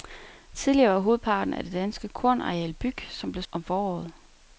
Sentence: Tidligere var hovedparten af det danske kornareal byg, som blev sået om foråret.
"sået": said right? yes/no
no